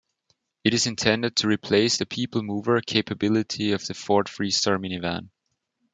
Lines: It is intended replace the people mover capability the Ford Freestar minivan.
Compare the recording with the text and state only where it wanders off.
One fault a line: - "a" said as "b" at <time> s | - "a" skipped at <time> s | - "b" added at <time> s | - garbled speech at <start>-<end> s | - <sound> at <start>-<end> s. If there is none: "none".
- "to" added at 1.4 s
- "of" added at 3.7 s